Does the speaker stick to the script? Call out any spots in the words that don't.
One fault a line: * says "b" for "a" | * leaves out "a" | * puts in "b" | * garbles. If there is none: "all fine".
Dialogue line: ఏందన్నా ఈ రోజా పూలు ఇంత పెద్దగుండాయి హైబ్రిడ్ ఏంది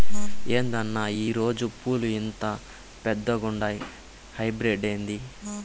all fine